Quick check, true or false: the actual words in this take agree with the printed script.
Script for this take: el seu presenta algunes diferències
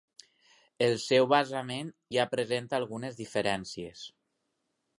false